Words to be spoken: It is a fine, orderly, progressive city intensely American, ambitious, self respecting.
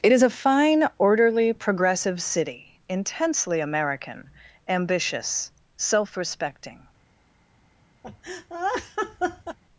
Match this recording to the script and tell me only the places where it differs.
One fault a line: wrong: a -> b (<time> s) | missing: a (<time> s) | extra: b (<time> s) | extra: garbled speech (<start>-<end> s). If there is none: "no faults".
no faults